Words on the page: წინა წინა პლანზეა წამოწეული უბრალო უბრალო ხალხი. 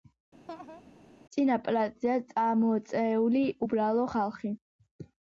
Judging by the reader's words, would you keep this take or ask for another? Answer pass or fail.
fail